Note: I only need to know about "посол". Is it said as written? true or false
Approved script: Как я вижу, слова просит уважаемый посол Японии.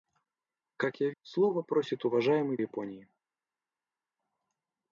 false